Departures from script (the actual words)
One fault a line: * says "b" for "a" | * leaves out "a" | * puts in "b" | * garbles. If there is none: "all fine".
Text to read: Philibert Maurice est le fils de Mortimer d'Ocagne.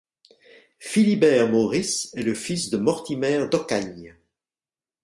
all fine